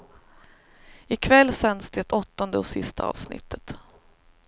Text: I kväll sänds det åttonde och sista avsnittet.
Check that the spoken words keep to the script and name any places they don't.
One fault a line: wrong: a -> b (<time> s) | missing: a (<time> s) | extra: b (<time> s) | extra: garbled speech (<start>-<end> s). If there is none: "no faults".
no faults